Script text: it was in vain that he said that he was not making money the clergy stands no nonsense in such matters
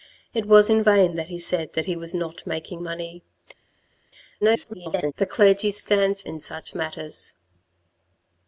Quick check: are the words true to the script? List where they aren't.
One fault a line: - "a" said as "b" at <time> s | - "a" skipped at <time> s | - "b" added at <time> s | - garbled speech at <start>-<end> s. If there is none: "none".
- garbled speech at 4.4-5.1 s
- "no nonsense" skipped at 6.3 s